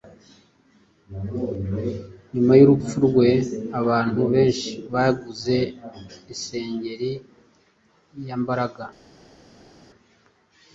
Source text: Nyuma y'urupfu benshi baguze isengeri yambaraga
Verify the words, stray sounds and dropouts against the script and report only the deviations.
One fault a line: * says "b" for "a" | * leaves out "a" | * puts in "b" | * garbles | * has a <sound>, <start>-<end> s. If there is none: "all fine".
* puts in "rwe abantu"